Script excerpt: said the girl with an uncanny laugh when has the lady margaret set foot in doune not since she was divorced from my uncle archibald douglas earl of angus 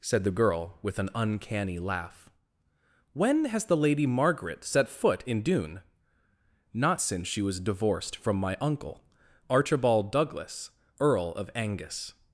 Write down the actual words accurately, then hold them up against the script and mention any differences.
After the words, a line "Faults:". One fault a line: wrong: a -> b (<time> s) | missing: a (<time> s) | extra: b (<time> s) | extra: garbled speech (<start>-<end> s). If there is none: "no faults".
said the girl with an uncanny laugh when has the lady margaret set foot in doune not since she was divorced from my uncle archibald douglas earl of angus
Faults:
no faults